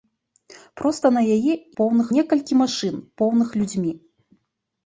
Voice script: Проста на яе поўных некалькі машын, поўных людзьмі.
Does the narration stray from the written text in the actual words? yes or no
no